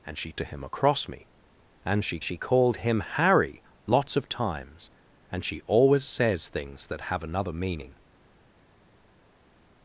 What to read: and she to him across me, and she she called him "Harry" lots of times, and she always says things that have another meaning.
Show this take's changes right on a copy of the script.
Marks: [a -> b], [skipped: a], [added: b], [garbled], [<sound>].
and she to him across me, and she she called him "Harry" lots of times, and she always says things that have another meaning.